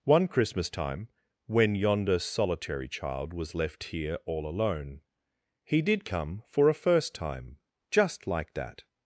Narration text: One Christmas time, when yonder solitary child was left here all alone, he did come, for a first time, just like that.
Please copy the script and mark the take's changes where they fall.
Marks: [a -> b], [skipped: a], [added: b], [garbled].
One Christmas time, when yonder solitary child was left here all alone, he did come, for a first time, just like that.